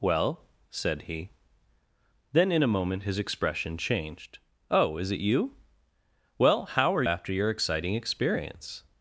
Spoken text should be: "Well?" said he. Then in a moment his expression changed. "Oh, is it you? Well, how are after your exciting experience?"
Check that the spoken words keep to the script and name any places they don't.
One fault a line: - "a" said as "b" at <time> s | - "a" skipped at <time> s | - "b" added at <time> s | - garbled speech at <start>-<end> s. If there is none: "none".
none